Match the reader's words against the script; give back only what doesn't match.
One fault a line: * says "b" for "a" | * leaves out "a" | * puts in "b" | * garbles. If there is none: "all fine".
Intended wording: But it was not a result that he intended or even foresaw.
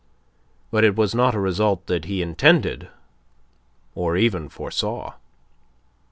all fine